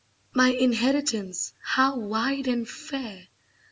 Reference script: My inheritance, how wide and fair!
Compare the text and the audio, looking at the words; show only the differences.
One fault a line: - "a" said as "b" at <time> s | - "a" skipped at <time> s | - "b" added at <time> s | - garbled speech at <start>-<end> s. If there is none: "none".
none